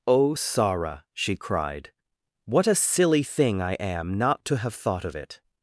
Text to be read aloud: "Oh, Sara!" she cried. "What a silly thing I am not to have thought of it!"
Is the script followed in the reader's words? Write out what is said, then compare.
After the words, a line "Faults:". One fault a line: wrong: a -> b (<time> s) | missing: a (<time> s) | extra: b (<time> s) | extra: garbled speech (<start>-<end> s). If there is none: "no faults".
"Oh, Sara!" she cried. "What a silly thing I am not to have thought of it!"
Faults:
no faults